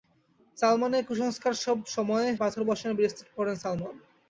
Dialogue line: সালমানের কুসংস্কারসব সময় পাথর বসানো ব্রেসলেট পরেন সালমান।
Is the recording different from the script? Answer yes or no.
no